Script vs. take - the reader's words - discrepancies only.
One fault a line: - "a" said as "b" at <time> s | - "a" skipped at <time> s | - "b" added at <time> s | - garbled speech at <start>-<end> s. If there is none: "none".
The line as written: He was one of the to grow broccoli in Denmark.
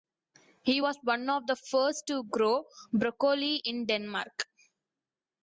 - "first" added at 1.6 s